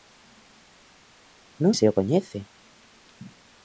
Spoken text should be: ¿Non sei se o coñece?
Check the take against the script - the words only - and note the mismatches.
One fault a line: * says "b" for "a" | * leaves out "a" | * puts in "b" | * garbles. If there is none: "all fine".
* leaves out "sei"